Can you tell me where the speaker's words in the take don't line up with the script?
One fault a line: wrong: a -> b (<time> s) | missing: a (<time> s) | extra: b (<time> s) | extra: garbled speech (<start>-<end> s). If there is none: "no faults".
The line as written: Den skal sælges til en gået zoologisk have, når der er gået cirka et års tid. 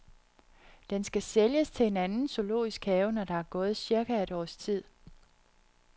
wrong: gået -> anden (2.0 s)